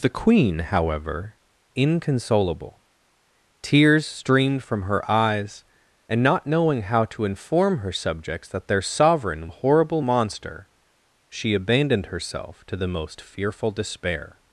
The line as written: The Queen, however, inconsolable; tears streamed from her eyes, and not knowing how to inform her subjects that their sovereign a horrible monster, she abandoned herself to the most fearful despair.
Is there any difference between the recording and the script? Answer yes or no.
no